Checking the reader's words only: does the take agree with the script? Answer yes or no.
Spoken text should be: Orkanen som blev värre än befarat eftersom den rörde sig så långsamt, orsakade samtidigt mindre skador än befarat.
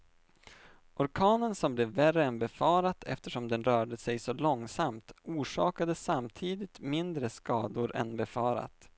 yes